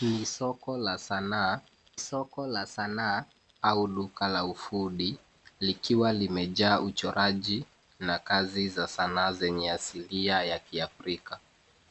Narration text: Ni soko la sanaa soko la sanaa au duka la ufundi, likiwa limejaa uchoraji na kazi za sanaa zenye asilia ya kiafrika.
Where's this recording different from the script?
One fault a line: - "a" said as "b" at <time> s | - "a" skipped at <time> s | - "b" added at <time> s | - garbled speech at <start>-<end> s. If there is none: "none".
none